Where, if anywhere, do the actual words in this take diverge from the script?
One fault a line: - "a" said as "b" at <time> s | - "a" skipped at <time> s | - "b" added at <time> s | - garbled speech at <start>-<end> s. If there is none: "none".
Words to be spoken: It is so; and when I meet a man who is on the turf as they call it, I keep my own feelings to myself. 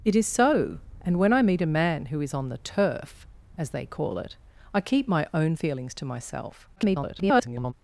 - garbled speech at 6.8-7.7 s